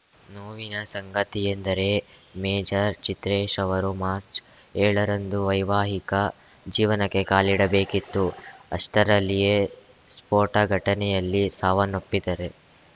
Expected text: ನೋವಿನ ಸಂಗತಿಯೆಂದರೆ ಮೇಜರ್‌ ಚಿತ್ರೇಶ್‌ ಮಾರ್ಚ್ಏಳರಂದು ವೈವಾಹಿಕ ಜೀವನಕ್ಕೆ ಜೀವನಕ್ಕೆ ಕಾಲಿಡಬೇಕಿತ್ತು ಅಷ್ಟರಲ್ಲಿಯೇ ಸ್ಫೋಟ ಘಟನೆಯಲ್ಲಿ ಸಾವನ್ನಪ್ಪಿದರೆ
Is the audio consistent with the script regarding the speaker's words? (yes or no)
no